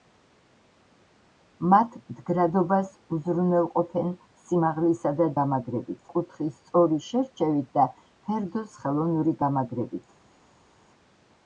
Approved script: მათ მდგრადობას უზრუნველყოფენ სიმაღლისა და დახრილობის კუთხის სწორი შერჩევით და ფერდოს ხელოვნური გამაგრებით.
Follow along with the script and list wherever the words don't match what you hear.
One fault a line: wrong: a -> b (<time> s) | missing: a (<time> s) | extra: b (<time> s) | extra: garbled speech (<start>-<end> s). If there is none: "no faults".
wrong: დახრილობის -> გამაგრებით (5.4 s)